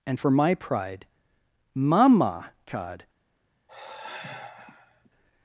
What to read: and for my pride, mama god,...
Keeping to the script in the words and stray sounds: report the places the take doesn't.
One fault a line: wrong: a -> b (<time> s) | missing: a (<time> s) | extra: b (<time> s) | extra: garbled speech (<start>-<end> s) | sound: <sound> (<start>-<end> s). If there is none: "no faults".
sound: sigh (3.7-5.1 s)